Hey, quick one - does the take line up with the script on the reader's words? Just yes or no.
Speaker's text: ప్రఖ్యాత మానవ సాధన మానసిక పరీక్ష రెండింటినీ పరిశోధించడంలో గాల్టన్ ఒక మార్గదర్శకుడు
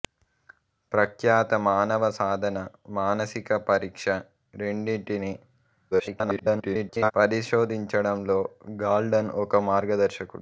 no